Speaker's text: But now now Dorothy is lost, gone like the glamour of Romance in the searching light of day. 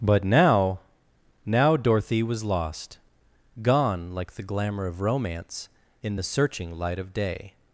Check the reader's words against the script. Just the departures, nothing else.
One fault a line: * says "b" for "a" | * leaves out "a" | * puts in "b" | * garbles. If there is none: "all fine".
* says "was" for "is"